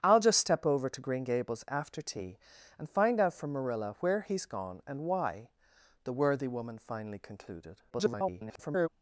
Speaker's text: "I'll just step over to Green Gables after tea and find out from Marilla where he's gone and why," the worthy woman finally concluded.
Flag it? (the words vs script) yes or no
yes